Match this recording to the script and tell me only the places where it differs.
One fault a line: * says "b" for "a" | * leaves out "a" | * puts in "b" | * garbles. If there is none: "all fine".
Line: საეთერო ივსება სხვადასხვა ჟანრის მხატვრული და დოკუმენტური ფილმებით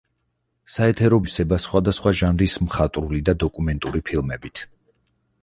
all fine